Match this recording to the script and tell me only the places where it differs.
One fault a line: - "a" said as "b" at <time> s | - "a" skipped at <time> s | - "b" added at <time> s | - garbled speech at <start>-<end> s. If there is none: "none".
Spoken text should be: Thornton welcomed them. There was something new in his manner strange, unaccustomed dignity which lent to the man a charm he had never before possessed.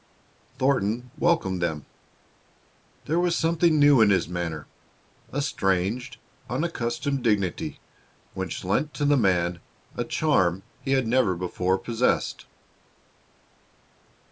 - "a" added at 5.3 s